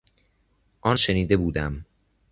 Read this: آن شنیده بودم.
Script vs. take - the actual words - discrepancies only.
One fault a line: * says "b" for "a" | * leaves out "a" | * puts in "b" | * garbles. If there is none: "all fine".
all fine